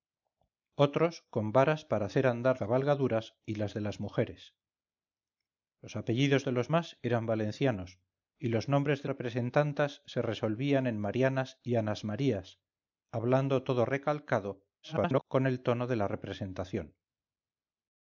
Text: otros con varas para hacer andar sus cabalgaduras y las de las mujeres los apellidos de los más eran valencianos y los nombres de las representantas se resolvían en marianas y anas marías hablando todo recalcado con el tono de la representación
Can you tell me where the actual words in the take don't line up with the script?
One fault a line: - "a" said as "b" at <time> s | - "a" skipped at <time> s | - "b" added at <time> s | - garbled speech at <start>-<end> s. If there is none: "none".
- "sus" skipped at 2.6 s
- "las" skipped at 9.1 s
- garbled speech at 14.8-15.2 s